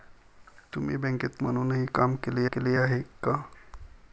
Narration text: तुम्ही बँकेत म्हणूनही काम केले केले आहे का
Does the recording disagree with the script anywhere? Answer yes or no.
no